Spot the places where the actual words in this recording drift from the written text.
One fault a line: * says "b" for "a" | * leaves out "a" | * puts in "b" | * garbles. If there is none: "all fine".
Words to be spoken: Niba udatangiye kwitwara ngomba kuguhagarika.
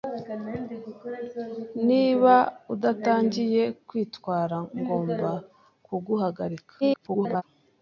* garbles